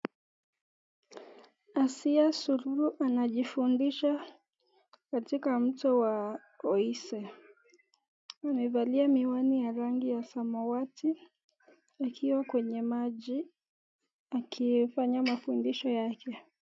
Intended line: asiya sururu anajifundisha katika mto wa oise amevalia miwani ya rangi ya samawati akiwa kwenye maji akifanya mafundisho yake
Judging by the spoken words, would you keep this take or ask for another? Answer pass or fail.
pass